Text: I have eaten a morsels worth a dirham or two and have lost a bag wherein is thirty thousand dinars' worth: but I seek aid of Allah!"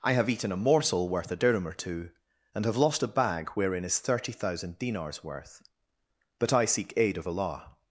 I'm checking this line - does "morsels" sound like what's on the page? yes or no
no